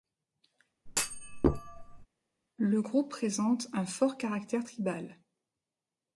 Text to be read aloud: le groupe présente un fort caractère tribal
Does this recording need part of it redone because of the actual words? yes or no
no